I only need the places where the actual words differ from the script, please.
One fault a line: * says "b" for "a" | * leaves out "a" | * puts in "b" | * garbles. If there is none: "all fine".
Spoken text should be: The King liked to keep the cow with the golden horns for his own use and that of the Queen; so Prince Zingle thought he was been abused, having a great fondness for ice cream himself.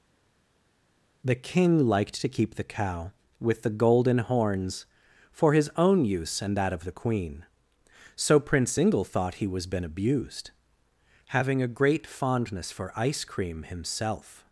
all fine